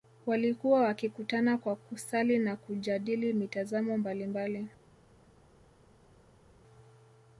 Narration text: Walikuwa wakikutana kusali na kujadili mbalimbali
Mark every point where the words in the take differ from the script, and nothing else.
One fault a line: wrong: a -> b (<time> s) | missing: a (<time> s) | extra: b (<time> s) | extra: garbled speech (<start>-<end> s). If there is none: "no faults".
extra: kwa (1.6 s)
extra: mitazamo (3.3 s)